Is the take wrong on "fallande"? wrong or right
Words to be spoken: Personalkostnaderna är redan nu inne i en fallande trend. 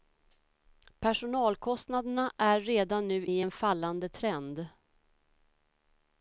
right